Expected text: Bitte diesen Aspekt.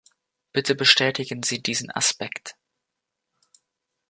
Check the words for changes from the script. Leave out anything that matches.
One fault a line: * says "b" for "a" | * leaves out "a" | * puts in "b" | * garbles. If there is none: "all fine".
* puts in "bestätigen Sie"